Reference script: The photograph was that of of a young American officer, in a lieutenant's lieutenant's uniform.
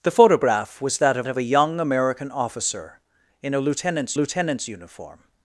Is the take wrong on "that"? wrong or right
right